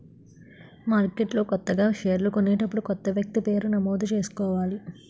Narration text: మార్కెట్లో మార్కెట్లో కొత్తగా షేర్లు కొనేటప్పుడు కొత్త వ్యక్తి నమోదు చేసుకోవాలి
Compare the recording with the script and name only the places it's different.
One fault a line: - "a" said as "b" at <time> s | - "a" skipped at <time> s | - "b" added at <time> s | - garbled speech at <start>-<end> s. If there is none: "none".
- "మార్కెట్లో" skipped at 1.4 s
- "పేరు" added at 3.4 s